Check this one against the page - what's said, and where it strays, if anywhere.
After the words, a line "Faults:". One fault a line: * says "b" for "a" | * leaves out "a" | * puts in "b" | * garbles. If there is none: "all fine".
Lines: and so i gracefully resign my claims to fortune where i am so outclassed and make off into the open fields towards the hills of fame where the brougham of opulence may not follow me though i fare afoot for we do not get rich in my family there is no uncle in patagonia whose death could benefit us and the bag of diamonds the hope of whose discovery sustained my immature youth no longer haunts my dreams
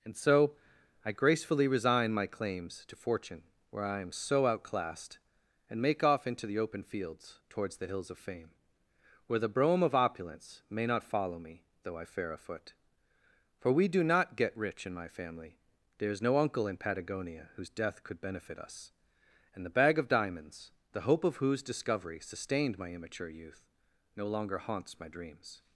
and so i gracefully resign my claims to fortune where i am so outclassed and make off into the open fields towards the hills of fame where the brougham of opulence may not follow me though i fare afoot for we do not get rich in my family there is no uncle in patagonia whose death could benefit us and the bag of diamonds the hope of whose discovery sustained my immature youth no longer haunts my dreams
Faults:
all fine